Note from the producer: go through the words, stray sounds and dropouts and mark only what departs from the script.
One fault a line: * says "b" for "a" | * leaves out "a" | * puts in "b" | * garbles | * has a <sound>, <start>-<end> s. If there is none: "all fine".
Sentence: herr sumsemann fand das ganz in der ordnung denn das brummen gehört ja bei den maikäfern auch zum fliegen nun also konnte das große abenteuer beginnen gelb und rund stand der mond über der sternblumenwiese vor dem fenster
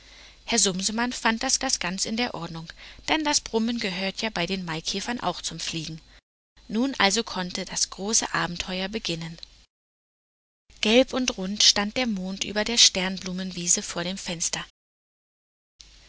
* puts in "das"